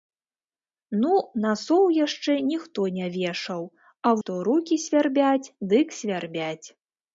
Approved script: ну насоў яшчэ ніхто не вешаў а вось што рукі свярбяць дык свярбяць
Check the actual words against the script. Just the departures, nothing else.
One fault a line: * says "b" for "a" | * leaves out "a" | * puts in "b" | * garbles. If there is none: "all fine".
* leaves out "вось"